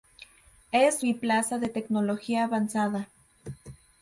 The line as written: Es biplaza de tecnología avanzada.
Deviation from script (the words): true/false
false